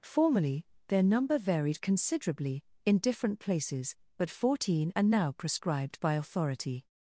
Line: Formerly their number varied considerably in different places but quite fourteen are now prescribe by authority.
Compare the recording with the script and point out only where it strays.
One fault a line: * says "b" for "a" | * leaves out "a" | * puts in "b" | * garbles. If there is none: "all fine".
* leaves out "quite"
* says "prescribed" for "prescribe"